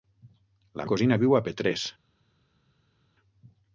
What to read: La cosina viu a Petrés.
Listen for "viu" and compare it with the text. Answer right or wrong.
right